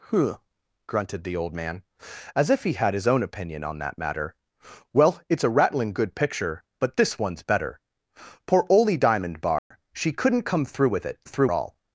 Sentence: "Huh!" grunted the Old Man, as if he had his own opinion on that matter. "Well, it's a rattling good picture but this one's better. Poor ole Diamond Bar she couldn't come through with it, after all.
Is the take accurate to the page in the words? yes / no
no